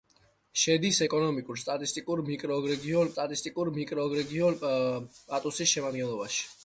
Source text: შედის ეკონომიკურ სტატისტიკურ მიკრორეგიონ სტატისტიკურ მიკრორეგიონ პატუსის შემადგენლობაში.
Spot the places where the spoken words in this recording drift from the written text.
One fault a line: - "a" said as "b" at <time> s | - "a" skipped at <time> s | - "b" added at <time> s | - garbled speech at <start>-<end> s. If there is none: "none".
none